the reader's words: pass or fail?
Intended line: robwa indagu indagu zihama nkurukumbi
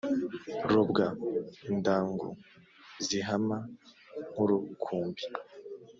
fail